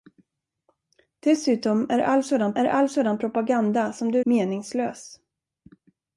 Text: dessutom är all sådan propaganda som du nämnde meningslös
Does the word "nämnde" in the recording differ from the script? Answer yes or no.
yes